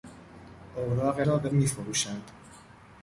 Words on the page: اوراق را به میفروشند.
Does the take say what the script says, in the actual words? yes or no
yes